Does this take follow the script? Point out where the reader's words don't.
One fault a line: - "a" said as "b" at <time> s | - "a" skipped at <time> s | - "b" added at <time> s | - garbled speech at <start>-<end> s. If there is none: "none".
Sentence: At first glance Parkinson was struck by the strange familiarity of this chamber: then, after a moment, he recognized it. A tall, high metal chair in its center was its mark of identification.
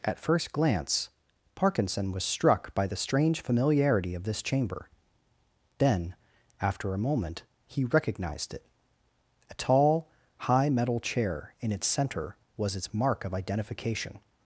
none